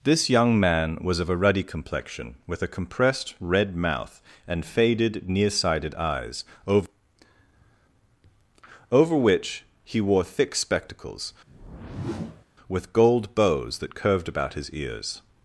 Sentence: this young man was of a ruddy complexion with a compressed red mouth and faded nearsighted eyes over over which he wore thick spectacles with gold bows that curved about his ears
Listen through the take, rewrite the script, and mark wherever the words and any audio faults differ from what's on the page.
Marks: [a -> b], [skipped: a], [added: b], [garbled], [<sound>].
this young man was of a ruddy complexion with a compressed red mouth and faded nearsighted eyes over over which he wore thick spectacles [whoosh] with gold bows that curved about his ears